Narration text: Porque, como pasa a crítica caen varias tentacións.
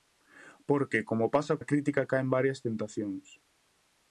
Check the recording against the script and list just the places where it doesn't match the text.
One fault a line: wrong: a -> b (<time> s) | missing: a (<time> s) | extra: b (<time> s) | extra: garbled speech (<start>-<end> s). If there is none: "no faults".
no faults